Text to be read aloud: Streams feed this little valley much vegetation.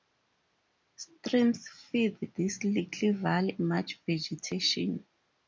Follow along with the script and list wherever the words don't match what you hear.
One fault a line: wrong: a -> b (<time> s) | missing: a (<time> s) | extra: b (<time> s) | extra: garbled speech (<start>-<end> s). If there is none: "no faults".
no faults